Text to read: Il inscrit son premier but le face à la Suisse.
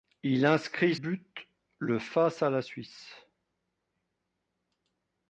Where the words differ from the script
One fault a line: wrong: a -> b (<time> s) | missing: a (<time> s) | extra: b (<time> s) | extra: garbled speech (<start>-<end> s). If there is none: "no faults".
missing: son premier (0.9 s)